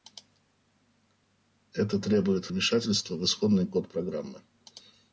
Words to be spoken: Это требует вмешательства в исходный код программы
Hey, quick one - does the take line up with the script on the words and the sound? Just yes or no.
yes